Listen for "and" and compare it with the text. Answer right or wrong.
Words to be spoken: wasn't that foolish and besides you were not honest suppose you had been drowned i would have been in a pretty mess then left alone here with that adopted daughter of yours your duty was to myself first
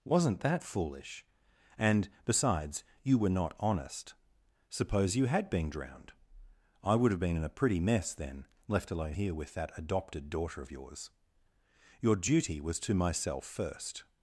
right